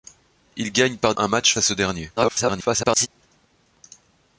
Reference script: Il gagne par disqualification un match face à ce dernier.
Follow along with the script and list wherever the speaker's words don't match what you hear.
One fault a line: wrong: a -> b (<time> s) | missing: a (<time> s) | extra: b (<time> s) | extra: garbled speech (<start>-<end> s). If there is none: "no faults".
missing: disqualification (1.1 s)
missing: face (1.5 s)
extra: garbled speech (2.2-3.1 s)